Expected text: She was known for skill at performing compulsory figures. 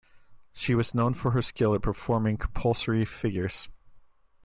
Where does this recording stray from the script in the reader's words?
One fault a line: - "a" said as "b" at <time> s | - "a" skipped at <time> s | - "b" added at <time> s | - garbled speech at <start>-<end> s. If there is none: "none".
- "her" added at 1.3 s